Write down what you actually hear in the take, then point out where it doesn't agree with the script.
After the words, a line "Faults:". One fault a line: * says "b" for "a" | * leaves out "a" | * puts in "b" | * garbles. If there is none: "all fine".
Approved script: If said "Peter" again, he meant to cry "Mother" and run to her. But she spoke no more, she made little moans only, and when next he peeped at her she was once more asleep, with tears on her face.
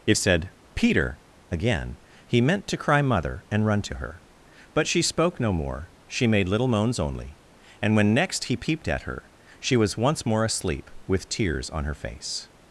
If said "Peter" again, he meant to cry "Mother" and run to her. But she spoke no more, she made little moans only, and when next he peeped at her she was once more asleep, with tears on her face.
Faults:
all fine